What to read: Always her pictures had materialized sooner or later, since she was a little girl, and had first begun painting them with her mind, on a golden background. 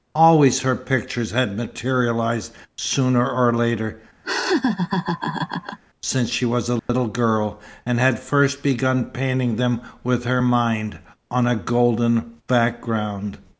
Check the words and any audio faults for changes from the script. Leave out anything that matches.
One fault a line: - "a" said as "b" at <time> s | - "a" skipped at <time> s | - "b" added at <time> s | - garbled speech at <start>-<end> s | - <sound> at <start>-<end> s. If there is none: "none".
- laugh at 4.2-5.8 s
- dropout at 6.8-6.9 s